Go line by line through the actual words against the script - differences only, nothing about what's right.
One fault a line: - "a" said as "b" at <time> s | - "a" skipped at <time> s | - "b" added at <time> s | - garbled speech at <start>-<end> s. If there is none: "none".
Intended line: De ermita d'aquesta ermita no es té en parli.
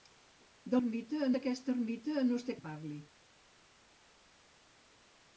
none